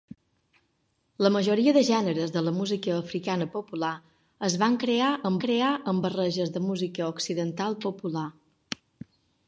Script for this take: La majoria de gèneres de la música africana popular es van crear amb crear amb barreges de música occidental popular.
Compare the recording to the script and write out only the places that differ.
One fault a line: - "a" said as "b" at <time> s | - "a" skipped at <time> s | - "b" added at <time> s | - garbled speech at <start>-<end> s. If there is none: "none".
none